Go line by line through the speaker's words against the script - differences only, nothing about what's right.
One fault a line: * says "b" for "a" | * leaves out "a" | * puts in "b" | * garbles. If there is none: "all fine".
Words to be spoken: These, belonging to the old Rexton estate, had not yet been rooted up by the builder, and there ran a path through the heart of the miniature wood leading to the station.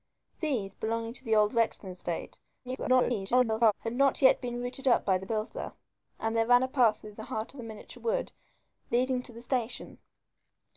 * garbles